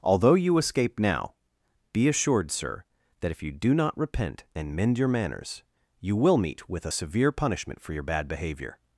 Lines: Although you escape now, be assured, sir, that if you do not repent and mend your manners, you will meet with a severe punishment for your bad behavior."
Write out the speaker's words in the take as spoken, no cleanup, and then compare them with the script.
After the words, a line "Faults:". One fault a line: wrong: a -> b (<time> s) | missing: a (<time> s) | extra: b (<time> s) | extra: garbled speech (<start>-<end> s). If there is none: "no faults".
Although you escape now, be assured, sir, that if you do not repent and mend your manners, you will meet with a severe punishment for your bad behavior."
Faults:
no faults